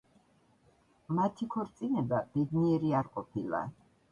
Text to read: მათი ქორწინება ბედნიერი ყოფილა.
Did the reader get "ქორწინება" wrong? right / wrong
right